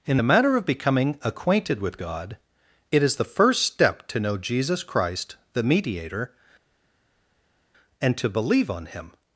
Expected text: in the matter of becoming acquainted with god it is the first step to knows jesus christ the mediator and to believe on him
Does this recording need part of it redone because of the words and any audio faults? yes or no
yes